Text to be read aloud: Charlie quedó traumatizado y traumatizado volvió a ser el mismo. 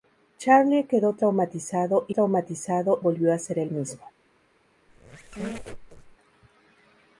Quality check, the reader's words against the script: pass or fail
pass